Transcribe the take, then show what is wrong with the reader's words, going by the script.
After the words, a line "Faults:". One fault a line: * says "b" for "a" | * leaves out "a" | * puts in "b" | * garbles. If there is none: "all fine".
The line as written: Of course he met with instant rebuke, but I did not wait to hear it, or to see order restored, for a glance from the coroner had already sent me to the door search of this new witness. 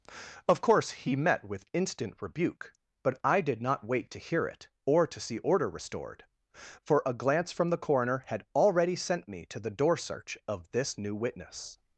Of course he met with instant rebuke, but I did not wait to hear it, or to see order restored, for a glance from the coroner had already sent me to the door search of this new witness.
Faults:
all fine